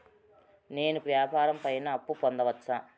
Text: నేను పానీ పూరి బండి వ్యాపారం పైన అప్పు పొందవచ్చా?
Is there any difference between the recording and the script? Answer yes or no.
yes